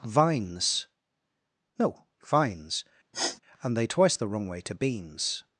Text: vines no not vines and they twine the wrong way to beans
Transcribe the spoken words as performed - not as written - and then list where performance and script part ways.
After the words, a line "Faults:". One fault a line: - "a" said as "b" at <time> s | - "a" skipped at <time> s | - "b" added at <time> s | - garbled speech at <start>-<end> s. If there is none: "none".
vines no vines and they twice the wrong way to beans
Faults:
- "not" skipped at 2.0 s
- "twine" said as "twice" at 3.9 s